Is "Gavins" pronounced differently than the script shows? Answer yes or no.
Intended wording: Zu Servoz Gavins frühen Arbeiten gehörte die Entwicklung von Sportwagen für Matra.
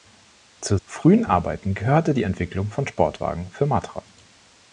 yes